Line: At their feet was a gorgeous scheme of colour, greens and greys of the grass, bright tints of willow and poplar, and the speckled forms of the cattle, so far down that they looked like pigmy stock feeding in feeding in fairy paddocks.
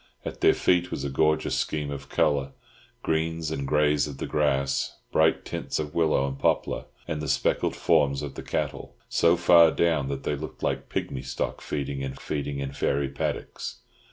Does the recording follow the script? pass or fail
pass